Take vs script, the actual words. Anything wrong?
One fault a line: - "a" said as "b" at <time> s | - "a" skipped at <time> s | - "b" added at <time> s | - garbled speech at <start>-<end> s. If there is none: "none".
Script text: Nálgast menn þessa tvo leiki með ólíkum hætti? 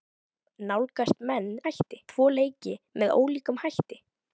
- "þessa" said as "hætti" at 1.7 s